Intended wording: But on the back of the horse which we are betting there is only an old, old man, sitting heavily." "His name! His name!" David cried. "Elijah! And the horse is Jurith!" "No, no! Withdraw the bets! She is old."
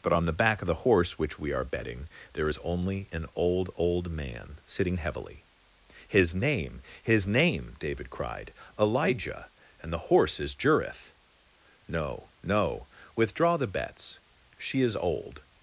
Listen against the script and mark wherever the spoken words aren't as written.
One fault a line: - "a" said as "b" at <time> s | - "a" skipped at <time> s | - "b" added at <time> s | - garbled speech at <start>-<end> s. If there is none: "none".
none